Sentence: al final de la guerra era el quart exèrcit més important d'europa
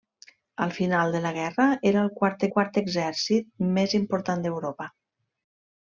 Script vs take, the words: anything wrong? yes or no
yes